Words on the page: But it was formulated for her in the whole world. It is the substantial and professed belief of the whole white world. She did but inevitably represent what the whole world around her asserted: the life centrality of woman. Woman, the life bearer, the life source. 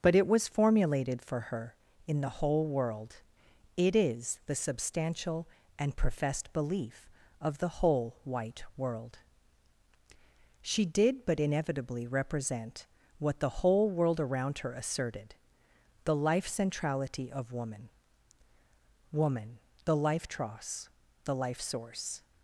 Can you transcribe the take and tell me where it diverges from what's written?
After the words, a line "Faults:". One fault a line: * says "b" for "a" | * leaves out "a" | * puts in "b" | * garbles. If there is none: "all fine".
But it was formulated for her in the whole world. It is the substantial and professed belief of the whole white world. She did but inevitably represent what the whole world around her asserted: the life centrality of woman. Woman, the life tross, the life source.
Faults:
* says "tross" for "bearer"